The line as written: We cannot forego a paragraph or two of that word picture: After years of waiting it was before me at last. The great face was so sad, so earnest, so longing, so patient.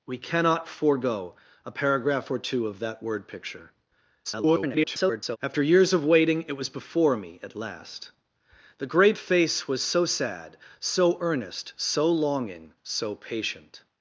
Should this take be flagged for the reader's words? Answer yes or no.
yes